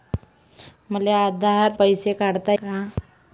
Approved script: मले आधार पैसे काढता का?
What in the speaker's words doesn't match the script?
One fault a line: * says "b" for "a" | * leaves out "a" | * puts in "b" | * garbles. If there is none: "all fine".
all fine